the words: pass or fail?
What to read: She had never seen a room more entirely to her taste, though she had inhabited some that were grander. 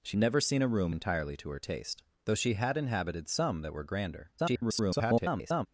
fail